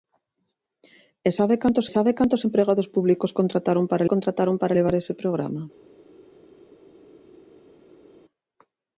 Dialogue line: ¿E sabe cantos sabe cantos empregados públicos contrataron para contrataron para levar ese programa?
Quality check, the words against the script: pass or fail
pass